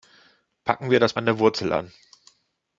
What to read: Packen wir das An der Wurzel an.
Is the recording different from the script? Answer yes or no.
no